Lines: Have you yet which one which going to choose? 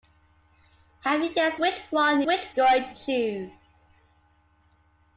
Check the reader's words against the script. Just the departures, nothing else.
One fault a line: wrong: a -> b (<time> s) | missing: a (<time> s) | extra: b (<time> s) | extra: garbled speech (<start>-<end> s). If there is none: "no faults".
no faults